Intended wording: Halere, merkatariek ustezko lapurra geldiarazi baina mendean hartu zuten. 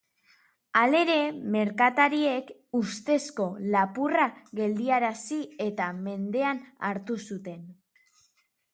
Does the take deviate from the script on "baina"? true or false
true